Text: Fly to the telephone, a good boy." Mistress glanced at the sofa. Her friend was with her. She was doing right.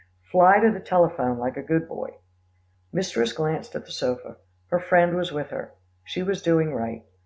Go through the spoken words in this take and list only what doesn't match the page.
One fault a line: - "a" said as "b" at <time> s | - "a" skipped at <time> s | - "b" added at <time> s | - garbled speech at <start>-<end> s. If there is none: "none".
- "like" added at 1.4 s